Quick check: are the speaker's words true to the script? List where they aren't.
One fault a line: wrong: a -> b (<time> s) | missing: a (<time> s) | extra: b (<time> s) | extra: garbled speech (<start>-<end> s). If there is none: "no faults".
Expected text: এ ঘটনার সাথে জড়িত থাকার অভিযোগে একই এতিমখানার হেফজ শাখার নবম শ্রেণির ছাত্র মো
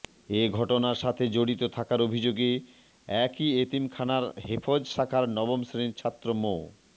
no faults